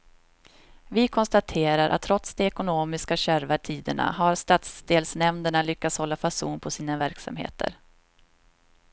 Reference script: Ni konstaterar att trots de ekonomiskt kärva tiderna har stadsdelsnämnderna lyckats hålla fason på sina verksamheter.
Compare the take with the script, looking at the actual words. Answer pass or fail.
fail